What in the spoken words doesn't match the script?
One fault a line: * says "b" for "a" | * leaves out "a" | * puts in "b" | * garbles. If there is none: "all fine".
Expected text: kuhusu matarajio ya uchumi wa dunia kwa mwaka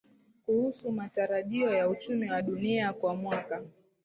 all fine